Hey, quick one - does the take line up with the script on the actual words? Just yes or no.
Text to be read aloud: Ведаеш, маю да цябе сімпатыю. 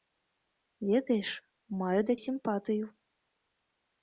no